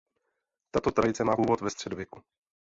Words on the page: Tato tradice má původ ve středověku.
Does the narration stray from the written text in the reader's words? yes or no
no